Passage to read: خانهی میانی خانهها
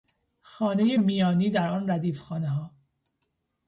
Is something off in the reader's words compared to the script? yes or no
yes